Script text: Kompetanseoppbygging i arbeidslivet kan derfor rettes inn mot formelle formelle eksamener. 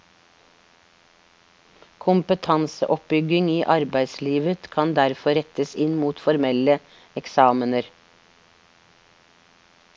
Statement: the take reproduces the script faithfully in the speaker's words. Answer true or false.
false